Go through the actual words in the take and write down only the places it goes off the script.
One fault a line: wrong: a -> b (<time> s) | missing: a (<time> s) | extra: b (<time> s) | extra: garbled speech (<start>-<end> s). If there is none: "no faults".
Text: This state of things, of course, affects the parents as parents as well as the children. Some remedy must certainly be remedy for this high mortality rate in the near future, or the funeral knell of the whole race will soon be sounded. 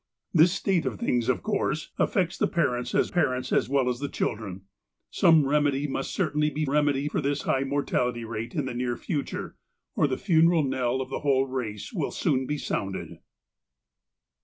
no faults